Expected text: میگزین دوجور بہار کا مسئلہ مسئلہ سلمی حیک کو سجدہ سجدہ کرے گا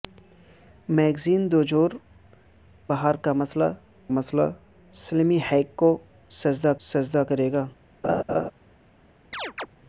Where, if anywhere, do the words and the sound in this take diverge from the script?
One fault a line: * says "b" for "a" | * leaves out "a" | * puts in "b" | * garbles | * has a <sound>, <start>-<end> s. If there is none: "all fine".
* has a laugh, 8.0-8.5 s
* has a chirp, 9.3-9.7 s